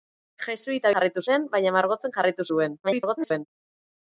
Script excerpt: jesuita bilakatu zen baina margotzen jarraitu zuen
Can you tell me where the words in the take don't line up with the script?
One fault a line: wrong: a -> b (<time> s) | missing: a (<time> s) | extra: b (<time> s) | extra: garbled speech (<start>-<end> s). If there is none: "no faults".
wrong: bilakatu -> jarraitu (1.0 s)
extra: garbled speech (2.8-3.5 s)